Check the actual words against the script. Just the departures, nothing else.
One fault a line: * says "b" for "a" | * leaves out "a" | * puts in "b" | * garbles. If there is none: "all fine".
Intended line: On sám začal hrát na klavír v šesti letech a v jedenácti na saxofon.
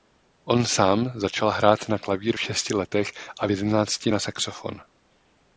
all fine